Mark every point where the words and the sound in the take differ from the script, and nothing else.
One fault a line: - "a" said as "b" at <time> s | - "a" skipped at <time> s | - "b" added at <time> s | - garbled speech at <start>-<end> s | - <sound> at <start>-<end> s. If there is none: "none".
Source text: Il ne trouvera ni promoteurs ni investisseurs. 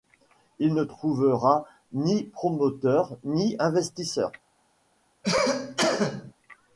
- cough at 5.2-6.3 s